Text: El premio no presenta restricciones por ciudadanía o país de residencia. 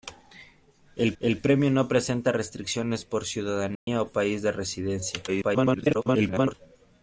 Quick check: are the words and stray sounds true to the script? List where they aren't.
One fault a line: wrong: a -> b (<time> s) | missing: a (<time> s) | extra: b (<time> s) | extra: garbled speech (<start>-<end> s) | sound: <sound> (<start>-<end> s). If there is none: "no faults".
extra: el (1.2 s)
sound: dropout (3.8-3.9 s)
extra: garbled speech (5.3-6.5 s)